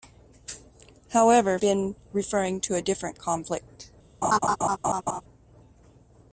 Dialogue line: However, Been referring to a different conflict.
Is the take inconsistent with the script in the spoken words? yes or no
no